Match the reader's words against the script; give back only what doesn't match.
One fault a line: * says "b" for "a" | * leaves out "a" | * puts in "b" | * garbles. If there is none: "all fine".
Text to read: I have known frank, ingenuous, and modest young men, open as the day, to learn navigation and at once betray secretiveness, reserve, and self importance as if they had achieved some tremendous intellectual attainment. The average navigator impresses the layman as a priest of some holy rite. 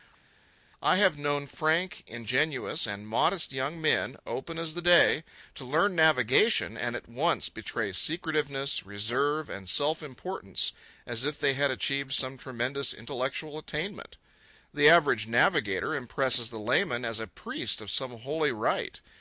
all fine